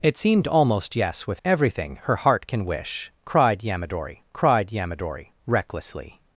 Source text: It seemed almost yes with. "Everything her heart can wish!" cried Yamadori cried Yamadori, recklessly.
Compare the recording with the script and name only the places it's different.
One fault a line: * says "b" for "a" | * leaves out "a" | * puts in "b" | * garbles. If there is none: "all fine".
all fine